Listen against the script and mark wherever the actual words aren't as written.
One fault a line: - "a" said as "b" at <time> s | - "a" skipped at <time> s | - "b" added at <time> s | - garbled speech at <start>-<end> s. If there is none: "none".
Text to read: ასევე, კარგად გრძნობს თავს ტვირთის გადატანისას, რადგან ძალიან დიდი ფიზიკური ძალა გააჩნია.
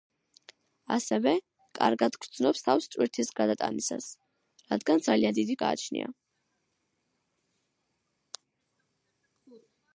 - "ფიზიკური ძალა" skipped at 5.6 s